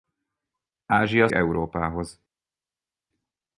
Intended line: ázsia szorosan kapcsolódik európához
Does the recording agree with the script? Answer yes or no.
no